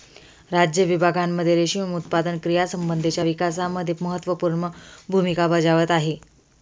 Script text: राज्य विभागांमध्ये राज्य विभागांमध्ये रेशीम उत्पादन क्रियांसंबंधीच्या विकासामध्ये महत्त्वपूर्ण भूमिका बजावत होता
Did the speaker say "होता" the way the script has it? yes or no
no